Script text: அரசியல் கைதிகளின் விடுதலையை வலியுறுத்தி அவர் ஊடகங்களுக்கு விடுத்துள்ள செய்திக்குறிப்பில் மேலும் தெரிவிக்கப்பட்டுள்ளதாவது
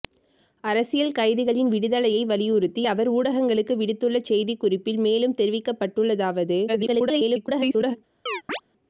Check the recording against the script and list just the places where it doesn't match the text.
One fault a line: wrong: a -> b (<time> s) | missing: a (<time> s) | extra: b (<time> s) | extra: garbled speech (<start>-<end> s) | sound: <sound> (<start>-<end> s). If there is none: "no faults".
extra: garbled speech (6.7-8.0 s)
sound: chirp (8.3-8.6 s)